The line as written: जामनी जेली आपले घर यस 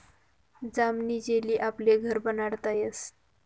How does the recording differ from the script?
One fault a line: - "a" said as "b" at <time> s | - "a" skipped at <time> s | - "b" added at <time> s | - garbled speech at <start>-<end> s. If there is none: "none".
- "बनाडता" added at 2.2 s